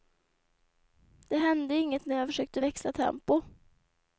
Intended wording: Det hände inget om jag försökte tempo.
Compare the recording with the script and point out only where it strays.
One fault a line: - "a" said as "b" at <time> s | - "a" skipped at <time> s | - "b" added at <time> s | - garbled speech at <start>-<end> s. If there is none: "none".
- "om" said as "när" at 2.1 s
- "växla" added at 2.6 s